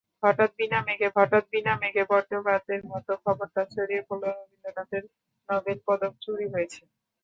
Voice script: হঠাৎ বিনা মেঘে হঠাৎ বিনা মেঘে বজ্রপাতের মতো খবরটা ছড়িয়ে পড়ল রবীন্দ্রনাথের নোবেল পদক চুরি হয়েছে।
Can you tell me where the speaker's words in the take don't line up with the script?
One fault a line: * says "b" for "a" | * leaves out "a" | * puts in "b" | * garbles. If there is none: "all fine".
all fine